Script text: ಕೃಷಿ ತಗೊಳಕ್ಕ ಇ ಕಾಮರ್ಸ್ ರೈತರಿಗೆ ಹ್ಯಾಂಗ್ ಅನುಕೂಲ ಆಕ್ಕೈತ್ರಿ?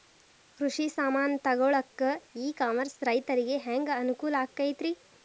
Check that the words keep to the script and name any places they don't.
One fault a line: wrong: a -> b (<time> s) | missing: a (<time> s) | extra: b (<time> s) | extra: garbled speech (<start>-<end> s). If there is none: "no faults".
extra: ಸಾಮಾನ್ (0.9 s)